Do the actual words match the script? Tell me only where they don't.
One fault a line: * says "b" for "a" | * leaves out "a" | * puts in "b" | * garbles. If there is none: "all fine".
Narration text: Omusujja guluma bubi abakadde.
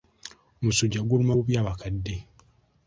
all fine